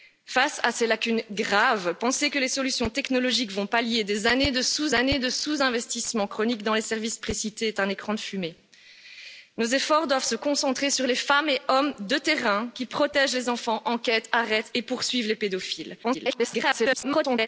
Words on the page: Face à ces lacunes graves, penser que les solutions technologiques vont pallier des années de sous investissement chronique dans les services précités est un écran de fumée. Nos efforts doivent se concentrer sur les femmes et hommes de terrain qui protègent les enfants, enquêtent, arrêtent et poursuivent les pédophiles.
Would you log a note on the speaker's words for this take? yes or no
yes